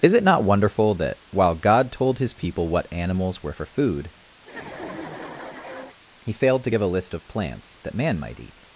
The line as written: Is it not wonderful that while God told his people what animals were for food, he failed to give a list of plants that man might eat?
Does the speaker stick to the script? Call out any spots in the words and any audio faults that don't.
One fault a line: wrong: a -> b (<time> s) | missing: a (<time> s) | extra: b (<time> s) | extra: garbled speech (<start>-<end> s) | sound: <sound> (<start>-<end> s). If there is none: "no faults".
sound: laugh (4.4-6.0 s)